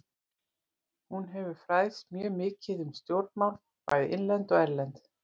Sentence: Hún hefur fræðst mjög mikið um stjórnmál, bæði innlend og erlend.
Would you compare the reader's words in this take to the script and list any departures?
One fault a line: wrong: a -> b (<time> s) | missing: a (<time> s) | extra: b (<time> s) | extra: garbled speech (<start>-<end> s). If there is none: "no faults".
no faults